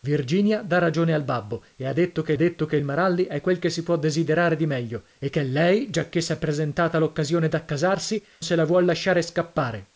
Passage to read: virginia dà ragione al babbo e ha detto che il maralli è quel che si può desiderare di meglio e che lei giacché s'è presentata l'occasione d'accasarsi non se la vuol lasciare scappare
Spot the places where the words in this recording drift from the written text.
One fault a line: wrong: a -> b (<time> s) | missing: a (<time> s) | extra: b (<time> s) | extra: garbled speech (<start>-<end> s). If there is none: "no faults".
extra: detto che (2.4 s)
missing: non (8.2 s)